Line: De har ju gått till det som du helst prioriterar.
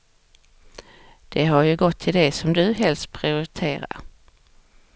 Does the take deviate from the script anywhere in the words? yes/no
no